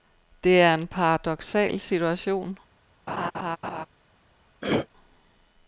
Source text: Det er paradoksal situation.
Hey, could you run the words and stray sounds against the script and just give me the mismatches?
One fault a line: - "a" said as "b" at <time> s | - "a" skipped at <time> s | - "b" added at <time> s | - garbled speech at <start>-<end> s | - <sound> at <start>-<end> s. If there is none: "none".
- "en" added at 0.7 s
- laugh at 3.1-3.9 s
- throat clearing at 4.6-4.9 s